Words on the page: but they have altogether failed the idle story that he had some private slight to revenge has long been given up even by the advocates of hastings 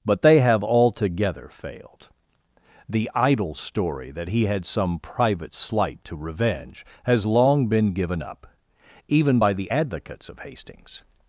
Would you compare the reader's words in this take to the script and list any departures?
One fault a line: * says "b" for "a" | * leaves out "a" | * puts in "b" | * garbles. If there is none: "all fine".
all fine